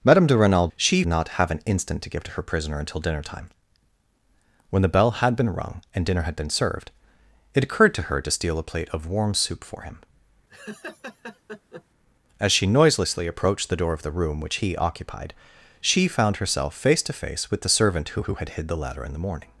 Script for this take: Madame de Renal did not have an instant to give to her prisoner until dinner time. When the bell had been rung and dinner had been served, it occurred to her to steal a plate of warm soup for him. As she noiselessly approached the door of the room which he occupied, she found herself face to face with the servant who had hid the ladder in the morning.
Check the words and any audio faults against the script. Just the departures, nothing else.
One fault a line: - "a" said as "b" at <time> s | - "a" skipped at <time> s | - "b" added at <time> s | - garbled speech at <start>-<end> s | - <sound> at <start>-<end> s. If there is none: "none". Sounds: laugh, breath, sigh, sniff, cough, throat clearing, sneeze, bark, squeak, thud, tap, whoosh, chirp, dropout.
- "did" said as "she" at 0.8 s
- laugh at 10.5-11.8 s
- "who" added at 18.2 s